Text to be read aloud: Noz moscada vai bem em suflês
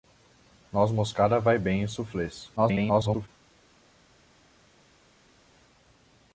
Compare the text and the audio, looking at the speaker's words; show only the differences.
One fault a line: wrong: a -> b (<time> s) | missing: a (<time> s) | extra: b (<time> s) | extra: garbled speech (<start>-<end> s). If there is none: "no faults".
extra: garbled speech (2.6-3.3 s)